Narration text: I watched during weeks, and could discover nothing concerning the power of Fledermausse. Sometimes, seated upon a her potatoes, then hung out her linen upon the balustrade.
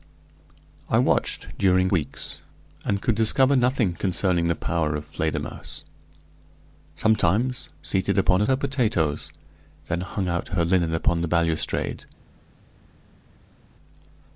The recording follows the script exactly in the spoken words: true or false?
true